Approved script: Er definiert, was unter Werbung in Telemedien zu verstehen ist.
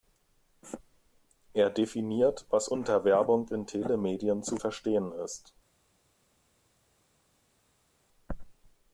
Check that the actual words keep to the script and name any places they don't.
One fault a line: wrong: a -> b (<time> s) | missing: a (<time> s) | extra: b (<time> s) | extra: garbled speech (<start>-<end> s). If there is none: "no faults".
no faults